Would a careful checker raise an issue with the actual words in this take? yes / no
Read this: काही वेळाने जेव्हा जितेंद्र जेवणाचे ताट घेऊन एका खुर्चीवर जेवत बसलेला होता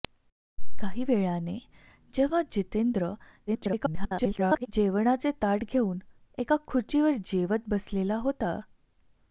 yes